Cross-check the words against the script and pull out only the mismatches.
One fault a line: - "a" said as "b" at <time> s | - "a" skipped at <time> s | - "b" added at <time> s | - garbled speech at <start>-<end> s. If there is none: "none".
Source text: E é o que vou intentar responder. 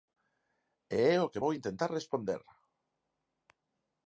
none